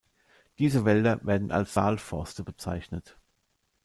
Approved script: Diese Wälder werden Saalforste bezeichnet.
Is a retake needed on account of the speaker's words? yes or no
yes